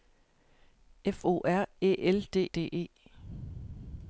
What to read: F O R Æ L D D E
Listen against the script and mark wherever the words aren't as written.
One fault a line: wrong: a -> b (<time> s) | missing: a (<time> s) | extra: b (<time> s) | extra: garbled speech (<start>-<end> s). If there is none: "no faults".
no faults